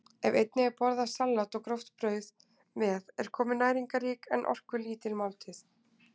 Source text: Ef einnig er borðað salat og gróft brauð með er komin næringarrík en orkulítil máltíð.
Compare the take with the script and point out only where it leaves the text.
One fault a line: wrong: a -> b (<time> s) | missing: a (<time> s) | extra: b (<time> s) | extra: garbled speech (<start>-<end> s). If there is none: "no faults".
no faults